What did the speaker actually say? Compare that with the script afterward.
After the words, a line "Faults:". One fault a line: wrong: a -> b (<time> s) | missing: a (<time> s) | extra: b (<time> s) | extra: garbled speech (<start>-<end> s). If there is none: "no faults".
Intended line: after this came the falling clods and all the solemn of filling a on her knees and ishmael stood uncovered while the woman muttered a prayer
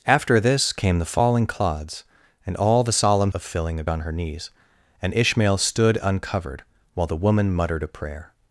after this came the falling clods and all the solemn of filling a on her knees and ishmael stood uncovered while the woman muttered a prayer
Faults:
no faults